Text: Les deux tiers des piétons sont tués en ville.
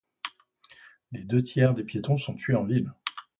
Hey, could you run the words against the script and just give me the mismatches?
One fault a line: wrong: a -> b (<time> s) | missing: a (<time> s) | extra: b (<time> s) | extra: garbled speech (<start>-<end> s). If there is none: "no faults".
no faults